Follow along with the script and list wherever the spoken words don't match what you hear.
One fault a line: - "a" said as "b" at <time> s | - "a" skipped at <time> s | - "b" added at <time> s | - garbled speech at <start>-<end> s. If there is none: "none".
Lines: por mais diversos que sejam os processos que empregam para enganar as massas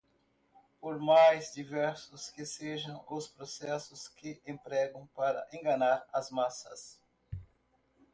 none